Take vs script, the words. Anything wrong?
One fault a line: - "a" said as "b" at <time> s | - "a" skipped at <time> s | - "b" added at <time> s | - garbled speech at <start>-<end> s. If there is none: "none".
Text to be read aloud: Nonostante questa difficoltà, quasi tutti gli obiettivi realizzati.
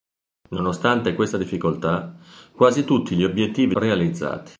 none